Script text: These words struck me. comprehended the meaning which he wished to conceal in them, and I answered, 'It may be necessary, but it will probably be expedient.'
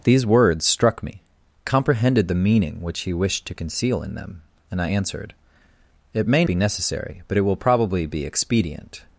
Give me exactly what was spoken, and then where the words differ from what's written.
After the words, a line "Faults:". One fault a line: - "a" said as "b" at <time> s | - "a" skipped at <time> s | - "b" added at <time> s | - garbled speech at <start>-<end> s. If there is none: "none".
These words struck me. comprehended the meaning which he wished to conceal in them, and I answered, 'It may be necessary, but it will probably be expedient.'
Faults:
none